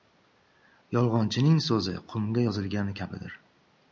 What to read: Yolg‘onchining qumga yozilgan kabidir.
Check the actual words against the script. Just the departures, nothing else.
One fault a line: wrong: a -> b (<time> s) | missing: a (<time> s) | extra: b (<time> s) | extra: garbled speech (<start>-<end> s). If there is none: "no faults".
extra: so‘zi (1.7 s)